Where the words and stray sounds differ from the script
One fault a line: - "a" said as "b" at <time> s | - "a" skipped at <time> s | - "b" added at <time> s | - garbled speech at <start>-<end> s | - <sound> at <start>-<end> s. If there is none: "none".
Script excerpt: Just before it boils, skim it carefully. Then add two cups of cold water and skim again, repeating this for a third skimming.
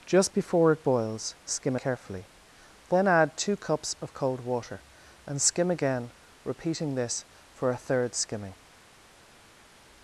- "it" skipped at 1.8 s